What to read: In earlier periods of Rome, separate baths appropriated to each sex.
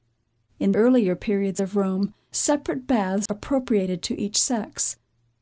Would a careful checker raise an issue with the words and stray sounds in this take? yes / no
yes